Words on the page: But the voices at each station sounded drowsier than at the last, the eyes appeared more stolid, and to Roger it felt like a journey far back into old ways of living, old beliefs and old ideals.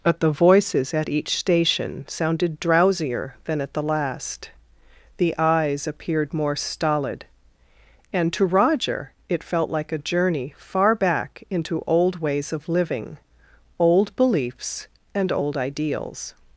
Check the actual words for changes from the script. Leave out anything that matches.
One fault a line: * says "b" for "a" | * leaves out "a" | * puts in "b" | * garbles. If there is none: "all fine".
all fine